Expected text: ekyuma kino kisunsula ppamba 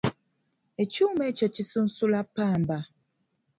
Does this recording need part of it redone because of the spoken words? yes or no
yes